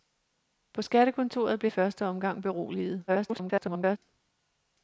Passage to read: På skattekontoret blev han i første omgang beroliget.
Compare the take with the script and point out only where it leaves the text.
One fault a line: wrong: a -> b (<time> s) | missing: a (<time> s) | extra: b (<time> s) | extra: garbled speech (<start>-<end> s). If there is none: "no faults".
missing: han (1.7 s)
extra: garbled speech (3.1-4.0 s)